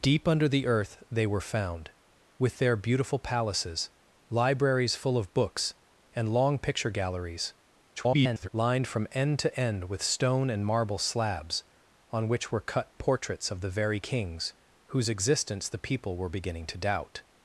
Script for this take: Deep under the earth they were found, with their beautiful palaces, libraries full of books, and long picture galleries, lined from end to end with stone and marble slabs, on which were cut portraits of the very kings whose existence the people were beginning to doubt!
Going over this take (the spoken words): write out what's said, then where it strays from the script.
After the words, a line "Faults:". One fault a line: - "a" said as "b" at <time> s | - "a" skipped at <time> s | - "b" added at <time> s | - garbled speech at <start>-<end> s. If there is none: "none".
Deep under the earth they were found, with their beautiful palaces, libraries full of books, and long picture galleries, [garbled] lined from end to end with stone and marble slabs, on which were cut portraits of the very kings whose existence the people were beginning to doubt!
Faults:
- garbled speech at 8.0-8.5 s